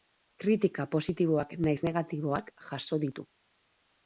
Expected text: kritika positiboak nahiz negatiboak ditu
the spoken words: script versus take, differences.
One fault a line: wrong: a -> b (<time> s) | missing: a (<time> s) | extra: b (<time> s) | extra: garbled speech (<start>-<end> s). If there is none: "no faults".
extra: jaso (2.7 s)